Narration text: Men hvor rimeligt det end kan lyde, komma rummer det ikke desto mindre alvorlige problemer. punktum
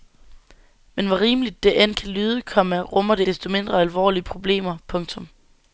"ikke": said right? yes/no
no